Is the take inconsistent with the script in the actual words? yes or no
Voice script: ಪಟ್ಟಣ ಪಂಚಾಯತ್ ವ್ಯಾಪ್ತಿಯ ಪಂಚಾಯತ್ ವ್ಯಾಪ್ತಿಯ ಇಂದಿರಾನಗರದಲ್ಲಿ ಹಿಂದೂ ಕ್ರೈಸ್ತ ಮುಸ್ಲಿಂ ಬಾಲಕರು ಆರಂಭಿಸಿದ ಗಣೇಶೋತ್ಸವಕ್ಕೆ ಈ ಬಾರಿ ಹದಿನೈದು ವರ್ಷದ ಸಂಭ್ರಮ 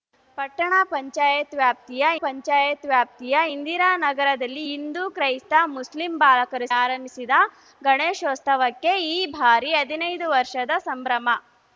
no